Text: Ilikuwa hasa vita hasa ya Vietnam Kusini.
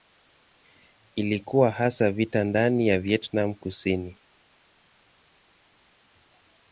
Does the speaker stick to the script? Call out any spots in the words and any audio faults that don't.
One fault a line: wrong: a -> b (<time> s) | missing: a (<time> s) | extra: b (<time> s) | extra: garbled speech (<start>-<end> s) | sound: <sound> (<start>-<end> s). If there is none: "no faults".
wrong: hasa -> ndani (2.4 s)